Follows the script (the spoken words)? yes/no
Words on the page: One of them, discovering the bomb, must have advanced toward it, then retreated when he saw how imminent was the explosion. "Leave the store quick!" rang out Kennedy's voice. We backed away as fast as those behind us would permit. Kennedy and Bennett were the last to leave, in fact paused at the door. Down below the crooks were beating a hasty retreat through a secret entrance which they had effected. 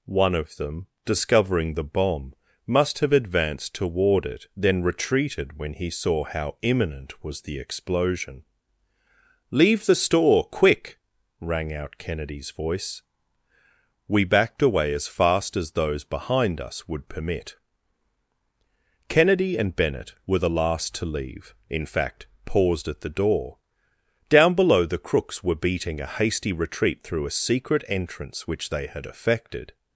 yes